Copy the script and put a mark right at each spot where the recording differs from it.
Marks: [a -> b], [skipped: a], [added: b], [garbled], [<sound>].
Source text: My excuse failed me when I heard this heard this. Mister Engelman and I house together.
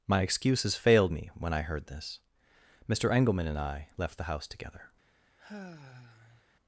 My [excuse -> excuses] failed me when I heard this [skipped: heard this.] Mister Engelman and I [added: left the] house together. [sigh]